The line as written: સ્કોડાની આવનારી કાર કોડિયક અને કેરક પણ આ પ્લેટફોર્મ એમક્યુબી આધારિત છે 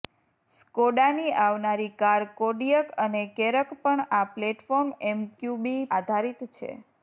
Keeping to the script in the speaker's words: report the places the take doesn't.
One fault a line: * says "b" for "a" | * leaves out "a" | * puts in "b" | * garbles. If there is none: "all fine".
all fine